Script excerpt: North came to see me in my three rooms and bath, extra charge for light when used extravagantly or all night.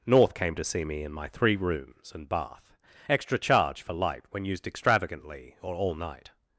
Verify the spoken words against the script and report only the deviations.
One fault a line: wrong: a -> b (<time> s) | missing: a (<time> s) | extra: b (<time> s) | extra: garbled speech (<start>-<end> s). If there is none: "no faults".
no faults